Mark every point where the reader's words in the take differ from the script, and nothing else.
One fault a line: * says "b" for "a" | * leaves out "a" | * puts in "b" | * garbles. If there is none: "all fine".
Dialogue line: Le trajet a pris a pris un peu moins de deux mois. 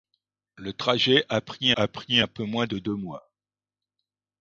all fine